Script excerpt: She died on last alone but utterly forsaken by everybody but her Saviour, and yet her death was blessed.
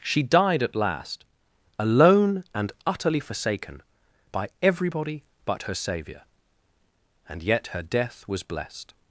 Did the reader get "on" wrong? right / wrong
wrong